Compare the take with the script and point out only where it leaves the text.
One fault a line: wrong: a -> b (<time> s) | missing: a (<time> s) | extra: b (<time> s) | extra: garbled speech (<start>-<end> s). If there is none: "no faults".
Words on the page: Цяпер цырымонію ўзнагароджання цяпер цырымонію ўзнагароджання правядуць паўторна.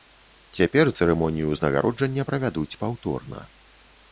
missing: цяпер цырымонію ўзнагароджання (2.3 s)